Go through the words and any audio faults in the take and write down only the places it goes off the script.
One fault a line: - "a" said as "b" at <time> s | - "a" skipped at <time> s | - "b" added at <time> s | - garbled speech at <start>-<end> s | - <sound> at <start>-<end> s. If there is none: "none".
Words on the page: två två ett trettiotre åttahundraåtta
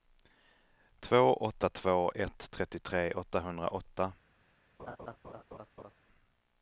- "åtta" added at 1.3 s
- laugh at 4.8-5.9 s